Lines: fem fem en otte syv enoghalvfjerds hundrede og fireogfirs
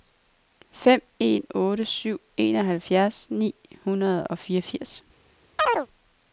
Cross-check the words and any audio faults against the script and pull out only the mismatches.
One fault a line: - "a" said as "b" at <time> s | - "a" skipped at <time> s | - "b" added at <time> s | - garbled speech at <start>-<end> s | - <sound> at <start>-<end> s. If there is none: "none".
- "fem" skipped at 1.0 s
- "ni" added at 3.3 s
- chirp at 5.6-5.9 s